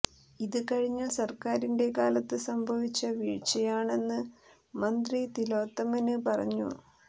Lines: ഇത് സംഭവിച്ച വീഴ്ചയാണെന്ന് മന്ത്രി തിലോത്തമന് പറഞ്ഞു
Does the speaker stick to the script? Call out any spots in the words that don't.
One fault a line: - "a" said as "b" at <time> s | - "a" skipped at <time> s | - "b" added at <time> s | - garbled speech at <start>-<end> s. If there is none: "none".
- "കഴിഞ്ഞ സര്ക്കാരിന്റെ കാലത്ത്" added at 0.7 s